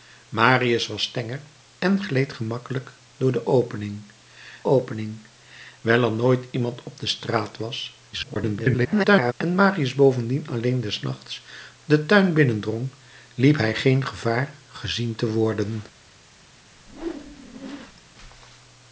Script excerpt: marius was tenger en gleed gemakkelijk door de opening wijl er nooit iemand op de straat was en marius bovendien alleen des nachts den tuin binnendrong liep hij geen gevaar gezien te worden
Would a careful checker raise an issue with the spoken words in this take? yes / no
yes